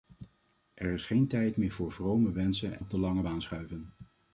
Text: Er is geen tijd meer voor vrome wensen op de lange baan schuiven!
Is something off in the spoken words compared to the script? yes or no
no